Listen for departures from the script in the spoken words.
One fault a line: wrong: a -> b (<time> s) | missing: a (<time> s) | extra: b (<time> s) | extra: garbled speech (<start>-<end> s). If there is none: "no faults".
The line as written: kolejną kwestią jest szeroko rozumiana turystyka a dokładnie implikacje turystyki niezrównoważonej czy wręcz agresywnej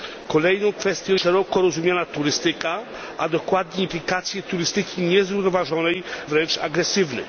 missing: jest (1.1 s)
missing: czy (6.0 s)